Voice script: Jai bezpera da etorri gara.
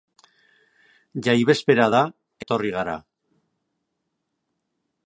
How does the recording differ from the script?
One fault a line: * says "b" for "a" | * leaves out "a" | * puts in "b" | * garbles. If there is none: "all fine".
all fine